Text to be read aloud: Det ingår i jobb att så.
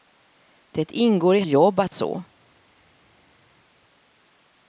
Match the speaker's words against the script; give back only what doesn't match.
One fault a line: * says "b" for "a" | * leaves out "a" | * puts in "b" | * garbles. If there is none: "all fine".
all fine